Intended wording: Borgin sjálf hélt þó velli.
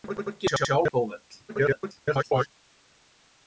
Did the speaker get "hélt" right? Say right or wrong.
wrong